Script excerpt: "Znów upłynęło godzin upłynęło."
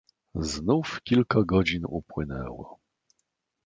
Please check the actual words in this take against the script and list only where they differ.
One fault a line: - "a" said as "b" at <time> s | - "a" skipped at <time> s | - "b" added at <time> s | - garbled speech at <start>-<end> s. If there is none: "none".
- "upłynęło" said as "kilka" at 1.0 s